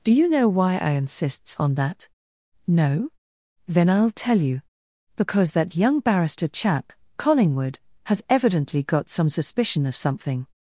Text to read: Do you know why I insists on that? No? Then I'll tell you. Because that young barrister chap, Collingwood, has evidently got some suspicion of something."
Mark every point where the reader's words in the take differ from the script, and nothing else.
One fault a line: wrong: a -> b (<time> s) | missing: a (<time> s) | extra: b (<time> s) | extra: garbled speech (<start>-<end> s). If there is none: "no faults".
no faults